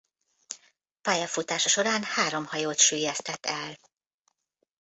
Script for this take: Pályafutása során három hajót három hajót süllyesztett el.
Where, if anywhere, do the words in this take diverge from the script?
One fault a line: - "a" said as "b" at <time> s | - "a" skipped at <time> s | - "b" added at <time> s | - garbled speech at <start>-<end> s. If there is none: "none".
- "három hajót" skipped at 2.8 s